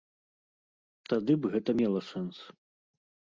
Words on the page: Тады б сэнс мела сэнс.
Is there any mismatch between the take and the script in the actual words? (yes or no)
yes